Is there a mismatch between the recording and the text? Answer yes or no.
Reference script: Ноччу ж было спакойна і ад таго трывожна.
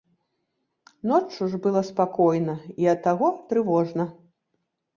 no